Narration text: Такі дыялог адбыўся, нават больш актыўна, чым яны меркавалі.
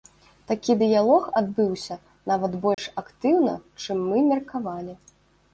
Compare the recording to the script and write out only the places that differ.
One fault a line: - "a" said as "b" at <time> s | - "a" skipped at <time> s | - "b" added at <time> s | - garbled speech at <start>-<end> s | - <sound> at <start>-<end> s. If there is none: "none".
- dropout at 2.7-2.8 s
- "яны" said as "мы" at 4.1 s